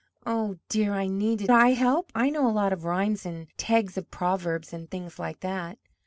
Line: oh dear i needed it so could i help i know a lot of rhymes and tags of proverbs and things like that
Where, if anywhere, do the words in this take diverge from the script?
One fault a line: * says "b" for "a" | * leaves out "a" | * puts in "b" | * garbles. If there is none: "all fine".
* leaves out "it so could"